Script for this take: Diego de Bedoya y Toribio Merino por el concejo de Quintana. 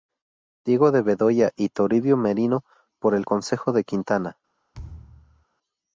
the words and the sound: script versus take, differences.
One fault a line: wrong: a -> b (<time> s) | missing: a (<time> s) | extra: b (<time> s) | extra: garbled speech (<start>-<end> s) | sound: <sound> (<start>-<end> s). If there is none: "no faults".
sound: thud (4.7-5.5 s)